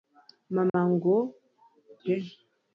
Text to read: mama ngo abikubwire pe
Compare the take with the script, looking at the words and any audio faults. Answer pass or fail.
fail